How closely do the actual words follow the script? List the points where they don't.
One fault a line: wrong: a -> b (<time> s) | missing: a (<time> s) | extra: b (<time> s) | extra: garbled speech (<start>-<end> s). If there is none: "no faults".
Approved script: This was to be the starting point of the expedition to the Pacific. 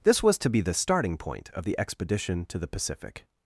no faults